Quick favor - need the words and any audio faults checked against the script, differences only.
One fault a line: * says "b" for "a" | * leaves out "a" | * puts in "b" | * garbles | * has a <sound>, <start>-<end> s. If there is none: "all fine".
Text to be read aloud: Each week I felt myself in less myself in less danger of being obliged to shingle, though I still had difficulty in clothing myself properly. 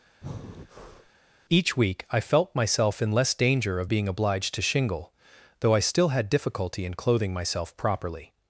* has a breath, 0.2-1.1 s
* leaves out "myself in less"